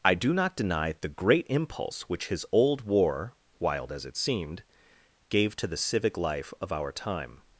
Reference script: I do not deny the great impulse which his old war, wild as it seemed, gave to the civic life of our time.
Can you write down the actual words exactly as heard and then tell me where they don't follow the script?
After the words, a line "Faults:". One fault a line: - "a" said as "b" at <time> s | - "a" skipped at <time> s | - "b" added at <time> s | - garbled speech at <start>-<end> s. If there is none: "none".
I do not deny the great impulse which his old war, wild as it seemed, gave to the civic life of our time.
Faults:
none